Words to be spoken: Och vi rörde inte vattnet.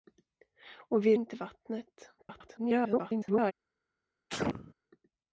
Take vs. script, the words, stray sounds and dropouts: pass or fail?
fail